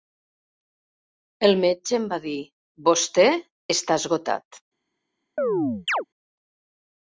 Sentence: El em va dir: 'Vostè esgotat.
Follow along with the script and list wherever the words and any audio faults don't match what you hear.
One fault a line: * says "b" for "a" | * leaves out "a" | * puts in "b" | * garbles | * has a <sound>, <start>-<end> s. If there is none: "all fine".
* puts in "metge"
* puts in "està"
* has a chirp, 5.4-6.0 s